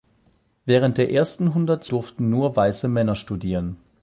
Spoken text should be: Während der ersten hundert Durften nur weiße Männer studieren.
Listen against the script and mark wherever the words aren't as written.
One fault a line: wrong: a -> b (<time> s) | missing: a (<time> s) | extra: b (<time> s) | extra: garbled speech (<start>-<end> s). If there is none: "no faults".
no faults